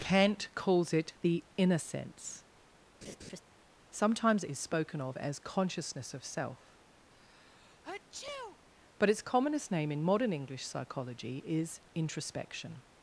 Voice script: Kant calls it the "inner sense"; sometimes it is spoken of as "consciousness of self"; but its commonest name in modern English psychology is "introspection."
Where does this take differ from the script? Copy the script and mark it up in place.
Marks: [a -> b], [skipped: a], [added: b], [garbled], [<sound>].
Kant calls it the "inner sense"; [laugh] sometimes it is spoken of as "consciousness of self"; [sneeze] but its commonest name in modern English psychology is "introspection."